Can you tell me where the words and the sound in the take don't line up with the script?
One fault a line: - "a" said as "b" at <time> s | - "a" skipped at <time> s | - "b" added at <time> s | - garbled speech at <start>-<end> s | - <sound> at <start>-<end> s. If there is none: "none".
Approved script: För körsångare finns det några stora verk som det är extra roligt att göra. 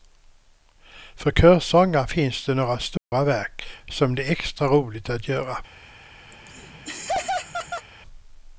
- dropout at 3.0-3.1 s
- laugh at 6.3-7.9 s